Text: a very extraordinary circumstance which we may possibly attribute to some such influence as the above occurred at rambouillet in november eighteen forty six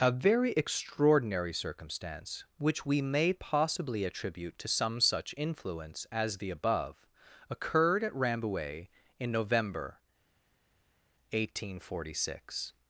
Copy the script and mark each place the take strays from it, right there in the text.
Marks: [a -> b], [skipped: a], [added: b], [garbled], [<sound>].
a very extraordinary circumstance which we may possibly attribute to some such influence as the above occurred at rambouillet in november eighteen forty six